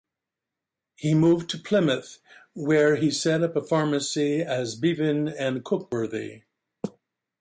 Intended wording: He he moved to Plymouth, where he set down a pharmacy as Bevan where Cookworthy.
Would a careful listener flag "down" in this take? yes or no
yes